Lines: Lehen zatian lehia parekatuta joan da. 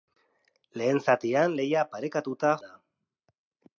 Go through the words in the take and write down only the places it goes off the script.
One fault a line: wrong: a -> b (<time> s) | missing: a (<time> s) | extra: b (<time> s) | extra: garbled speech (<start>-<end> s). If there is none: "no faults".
missing: joan (2.5 s)